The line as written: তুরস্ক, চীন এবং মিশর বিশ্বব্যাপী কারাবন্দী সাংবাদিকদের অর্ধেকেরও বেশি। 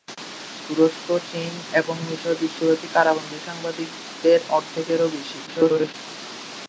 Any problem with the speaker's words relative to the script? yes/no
yes